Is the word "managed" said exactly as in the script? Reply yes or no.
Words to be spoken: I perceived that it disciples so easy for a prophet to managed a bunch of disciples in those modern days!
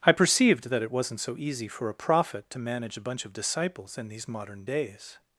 no